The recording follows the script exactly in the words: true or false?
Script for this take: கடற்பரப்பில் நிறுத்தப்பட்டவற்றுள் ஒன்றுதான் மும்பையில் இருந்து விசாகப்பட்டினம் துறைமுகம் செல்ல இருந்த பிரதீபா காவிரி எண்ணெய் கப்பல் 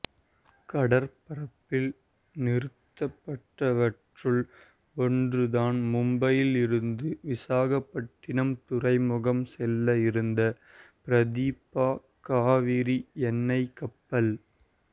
true